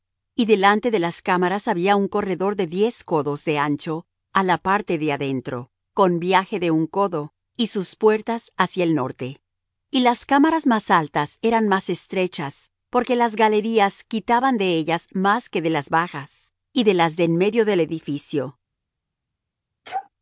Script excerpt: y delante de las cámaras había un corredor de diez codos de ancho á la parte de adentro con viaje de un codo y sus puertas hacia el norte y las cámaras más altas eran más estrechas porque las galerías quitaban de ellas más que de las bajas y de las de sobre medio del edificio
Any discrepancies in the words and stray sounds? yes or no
yes